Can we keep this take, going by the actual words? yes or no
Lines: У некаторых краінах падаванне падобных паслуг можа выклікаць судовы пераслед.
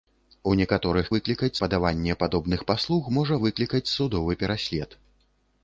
no